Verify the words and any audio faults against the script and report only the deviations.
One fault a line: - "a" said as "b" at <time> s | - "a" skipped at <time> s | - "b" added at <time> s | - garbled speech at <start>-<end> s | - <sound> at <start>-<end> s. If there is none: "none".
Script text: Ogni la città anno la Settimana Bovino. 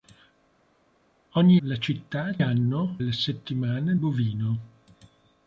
none